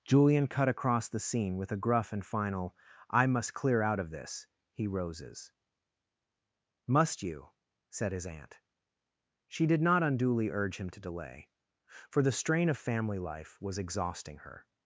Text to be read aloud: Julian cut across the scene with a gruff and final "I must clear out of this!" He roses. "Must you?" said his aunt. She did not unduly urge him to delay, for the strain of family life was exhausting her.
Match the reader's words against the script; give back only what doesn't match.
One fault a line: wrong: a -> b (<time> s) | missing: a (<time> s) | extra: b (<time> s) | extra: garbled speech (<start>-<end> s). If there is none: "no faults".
no faults